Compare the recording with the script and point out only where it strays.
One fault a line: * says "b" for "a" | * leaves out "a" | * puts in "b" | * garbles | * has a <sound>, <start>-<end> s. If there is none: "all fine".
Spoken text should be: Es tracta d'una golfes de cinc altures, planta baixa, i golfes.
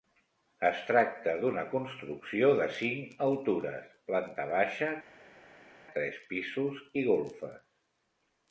* says "construcció" for "golfes"
* puts in "tres pisos"